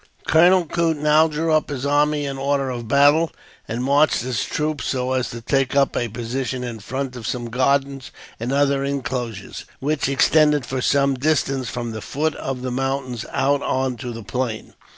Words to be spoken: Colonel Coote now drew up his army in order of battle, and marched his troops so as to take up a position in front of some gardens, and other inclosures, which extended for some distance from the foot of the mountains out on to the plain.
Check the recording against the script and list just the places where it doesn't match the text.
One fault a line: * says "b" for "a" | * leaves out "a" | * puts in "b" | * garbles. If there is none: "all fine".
all fine